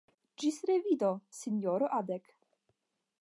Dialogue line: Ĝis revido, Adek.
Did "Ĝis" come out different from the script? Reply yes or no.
no